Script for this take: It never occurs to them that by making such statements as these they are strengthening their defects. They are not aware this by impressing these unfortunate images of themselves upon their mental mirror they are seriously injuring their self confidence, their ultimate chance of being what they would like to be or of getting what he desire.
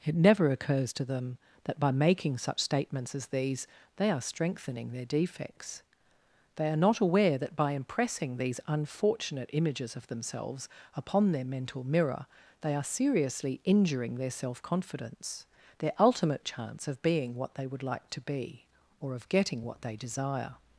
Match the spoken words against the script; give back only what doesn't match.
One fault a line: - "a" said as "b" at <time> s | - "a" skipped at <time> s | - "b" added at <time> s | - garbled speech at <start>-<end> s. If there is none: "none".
- "this" said as "that" at 7.4 s
- "he" said as "they" at 19.8 s